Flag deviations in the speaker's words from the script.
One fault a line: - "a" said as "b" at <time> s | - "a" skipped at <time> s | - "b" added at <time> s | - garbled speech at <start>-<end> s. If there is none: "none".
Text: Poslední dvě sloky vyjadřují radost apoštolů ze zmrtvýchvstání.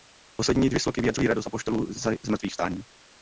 none